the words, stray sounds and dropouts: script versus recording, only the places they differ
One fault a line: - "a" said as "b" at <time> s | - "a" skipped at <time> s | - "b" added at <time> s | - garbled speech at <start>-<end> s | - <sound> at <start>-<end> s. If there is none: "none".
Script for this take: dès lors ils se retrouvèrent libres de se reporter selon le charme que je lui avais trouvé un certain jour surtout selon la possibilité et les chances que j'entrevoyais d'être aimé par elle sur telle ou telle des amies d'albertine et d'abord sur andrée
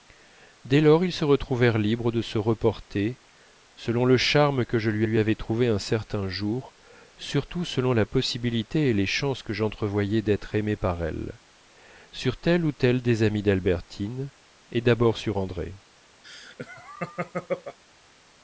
- "lui" added at 5.0 s
- laugh at 16.2-17.8 s